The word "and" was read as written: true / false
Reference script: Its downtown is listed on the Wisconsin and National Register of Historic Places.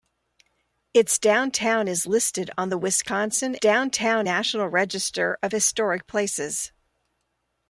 false